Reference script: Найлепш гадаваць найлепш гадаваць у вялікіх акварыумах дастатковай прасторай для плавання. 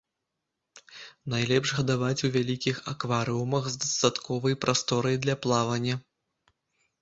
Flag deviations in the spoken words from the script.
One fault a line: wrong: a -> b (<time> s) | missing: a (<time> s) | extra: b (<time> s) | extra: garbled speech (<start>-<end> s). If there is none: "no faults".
missing: найлепш гадаваць (2.2 s)
extra: з (3.7 s)